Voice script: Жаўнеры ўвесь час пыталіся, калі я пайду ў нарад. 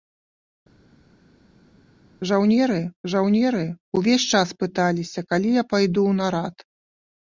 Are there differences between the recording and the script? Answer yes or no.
yes